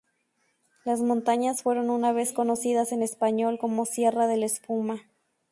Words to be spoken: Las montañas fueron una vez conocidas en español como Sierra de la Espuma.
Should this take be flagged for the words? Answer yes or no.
no